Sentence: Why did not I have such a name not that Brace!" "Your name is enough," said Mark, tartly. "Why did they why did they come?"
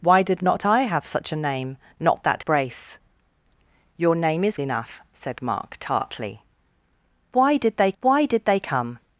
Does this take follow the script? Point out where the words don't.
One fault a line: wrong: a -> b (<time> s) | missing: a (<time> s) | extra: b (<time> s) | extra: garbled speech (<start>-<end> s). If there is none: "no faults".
no faults